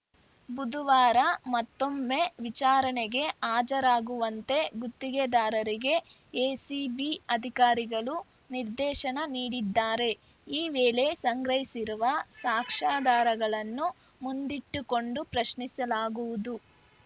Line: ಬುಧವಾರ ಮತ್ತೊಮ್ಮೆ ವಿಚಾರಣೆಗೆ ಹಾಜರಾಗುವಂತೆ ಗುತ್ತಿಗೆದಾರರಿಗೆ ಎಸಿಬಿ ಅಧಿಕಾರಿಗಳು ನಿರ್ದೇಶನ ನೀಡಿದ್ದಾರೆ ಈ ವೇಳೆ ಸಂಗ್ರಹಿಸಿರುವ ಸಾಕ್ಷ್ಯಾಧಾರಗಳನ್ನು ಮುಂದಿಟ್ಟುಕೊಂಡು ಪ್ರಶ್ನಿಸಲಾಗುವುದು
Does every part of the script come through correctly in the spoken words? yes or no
yes